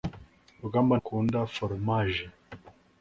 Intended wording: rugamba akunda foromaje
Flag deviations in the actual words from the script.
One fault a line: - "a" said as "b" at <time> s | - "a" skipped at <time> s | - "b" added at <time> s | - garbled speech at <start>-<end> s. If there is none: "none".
none